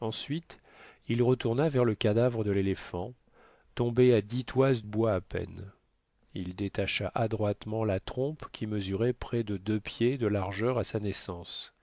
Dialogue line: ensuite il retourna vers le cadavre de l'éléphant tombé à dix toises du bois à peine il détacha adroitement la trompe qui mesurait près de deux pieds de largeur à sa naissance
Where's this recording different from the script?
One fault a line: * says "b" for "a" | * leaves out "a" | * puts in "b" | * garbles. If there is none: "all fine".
* leaves out "du"